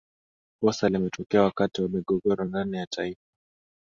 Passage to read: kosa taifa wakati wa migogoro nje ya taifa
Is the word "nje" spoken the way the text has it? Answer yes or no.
no